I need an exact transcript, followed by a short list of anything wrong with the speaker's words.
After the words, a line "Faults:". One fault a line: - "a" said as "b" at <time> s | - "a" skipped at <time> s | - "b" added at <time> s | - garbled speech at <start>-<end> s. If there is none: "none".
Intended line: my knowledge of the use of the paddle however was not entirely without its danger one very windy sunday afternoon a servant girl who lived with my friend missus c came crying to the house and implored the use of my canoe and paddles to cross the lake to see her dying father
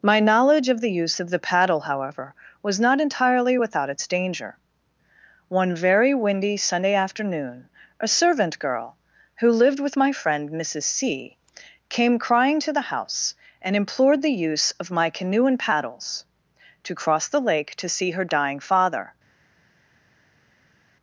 my knowledge of the use of the paddle however was not entirely without its danger one very windy sunday afternoon a servant girl who lived with my friend missus c came crying to the house and implored the use of my canoe and paddles to cross the lake to see her dying father
Faults:
none